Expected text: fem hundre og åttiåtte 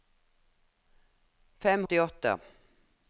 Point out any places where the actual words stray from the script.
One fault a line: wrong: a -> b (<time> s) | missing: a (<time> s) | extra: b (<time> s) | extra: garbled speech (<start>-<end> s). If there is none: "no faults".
missing: hundre og (1.9 s)